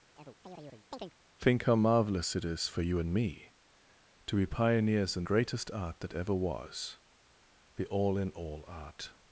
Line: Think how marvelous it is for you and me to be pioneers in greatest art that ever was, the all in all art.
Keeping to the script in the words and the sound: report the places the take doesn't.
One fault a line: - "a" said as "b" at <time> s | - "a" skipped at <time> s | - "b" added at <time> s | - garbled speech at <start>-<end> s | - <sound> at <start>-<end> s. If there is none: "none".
- chirp at 0.2-1.2 s